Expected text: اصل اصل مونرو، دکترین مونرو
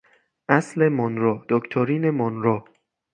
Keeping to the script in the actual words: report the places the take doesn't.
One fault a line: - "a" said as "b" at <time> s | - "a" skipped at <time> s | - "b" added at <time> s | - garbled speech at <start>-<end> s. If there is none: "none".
- "اصل" skipped at 0.9 s